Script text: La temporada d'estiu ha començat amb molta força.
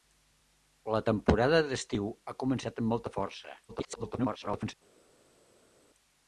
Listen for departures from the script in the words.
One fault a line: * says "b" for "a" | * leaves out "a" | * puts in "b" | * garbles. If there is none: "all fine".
* garbles